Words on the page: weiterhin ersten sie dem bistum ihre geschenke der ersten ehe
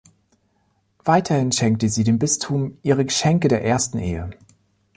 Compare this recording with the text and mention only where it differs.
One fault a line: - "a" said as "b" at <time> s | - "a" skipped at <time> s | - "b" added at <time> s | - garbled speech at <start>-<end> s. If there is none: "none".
- "ersten" said as "schenkte" at 1.5 s